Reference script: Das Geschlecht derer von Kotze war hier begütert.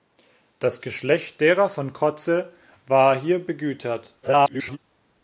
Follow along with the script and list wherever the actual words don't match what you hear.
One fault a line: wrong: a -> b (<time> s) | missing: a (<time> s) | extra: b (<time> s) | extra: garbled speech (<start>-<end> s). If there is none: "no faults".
extra: garbled speech (4.2-4.8 s)